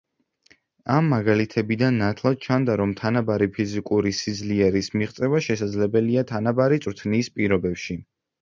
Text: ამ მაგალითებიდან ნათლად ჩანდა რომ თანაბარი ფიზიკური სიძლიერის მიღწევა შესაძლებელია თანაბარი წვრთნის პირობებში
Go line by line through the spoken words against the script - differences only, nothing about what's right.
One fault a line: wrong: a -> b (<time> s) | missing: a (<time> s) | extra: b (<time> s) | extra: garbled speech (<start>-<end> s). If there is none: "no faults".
no faults